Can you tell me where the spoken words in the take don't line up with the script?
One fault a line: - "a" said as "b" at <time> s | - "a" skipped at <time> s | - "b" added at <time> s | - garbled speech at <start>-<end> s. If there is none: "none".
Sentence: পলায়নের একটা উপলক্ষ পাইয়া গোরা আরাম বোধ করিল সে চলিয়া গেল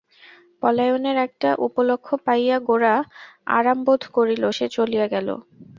none